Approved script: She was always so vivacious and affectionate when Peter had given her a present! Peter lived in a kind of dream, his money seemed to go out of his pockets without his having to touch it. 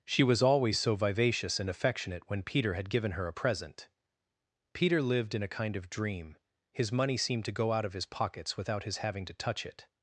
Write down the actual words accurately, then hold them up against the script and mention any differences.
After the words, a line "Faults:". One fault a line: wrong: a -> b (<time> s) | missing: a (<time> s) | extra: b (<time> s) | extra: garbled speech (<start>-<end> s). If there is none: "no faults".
She was always so vivacious and affectionate when Peter had given her a present! Peter lived in a kind of dream, his money seemed to go out of his pockets without his having to touch it.
Faults:
no faults